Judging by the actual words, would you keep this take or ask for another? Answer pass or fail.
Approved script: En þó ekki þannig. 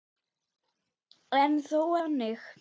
fail